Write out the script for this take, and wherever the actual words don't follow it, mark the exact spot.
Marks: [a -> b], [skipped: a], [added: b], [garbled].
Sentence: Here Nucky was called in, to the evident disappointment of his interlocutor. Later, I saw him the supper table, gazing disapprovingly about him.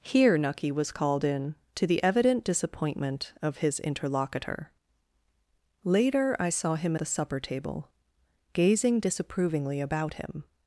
Here Nucky was called in, to the evident disappointment of his interlocutor. Later, I saw him the supper table, gazing disapprovingly about him.